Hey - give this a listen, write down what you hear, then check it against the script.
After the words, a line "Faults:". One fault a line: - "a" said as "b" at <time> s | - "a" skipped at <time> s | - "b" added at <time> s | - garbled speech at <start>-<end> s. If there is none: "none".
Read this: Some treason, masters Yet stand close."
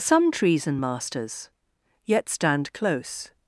Some treason, masters Yet stand close."
Faults:
none